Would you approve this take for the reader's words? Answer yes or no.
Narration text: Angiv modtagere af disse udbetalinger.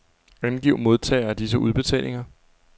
yes